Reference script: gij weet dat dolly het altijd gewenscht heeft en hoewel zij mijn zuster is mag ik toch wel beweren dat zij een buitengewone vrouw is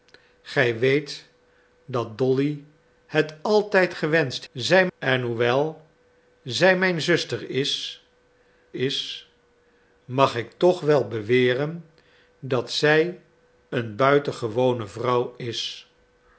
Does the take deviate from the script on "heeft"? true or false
true